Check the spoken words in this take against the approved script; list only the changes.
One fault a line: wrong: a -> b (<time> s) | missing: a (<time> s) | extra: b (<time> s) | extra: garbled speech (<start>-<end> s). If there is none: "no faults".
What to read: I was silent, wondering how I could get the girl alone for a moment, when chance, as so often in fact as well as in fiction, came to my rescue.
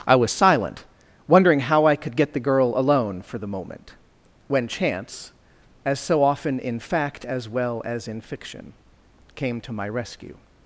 wrong: a -> the (3.4 s)